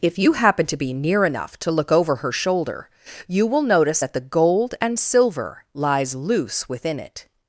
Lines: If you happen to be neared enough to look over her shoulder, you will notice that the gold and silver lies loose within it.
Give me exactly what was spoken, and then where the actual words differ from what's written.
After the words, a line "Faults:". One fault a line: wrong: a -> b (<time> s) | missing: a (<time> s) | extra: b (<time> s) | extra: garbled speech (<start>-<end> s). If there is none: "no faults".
If you happen to be near enough to look over her shoulder, you will notice that the gold and silver lies loose within it.
Faults:
wrong: neared -> near (0.9 s)